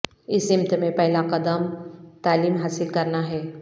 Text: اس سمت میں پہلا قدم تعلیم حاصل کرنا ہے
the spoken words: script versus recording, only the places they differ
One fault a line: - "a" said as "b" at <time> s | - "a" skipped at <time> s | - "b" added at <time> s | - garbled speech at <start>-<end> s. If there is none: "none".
none